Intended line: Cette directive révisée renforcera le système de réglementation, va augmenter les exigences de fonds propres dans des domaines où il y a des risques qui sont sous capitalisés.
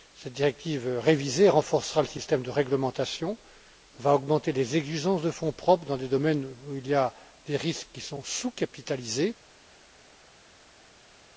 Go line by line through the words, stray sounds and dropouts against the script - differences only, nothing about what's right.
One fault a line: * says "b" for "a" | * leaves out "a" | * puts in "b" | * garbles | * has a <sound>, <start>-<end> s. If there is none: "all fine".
all fine